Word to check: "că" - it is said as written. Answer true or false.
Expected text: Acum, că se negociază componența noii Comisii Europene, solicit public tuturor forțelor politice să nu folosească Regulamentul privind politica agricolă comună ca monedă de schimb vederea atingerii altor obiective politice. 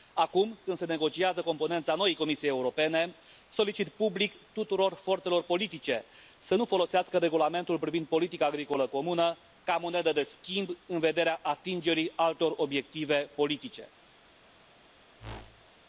false